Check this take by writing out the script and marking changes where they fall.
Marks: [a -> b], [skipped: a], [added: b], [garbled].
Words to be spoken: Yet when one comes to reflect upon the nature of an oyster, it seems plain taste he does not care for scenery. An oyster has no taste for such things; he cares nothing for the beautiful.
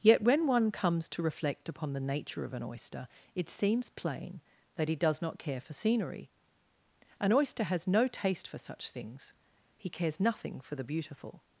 Yet when one comes to reflect upon the nature of an oyster, it seems plain [taste -> that] he does not care for scenery. An oyster has no taste for such things; he cares nothing for the beautiful.